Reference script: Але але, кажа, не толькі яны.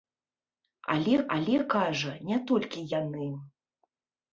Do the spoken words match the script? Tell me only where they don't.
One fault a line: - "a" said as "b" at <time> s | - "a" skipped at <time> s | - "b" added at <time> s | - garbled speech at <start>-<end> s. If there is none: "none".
none